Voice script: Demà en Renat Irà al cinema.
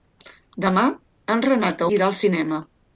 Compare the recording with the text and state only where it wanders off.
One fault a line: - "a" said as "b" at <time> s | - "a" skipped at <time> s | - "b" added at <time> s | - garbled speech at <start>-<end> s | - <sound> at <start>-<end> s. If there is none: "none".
none